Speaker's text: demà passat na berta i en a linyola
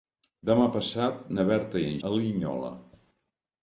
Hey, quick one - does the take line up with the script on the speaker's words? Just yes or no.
yes